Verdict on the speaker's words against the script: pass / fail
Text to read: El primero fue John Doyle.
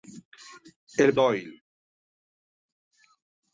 fail